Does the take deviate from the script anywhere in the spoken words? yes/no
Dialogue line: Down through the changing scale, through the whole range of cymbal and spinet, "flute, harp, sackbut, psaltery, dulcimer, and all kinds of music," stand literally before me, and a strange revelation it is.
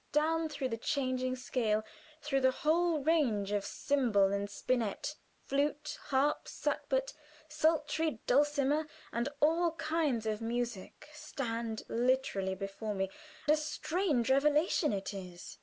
yes